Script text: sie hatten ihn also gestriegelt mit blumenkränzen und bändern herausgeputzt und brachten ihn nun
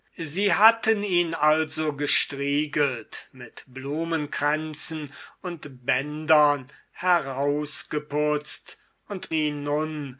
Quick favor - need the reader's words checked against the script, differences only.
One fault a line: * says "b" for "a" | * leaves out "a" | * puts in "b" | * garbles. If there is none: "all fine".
* leaves out "brachten"